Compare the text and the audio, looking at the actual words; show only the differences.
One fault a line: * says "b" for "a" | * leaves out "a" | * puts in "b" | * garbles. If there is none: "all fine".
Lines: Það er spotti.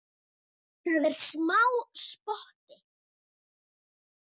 * puts in "smá"